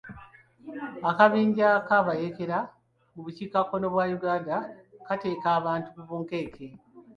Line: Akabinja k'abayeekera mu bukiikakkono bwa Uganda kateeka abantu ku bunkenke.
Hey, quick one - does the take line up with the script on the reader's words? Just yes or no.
yes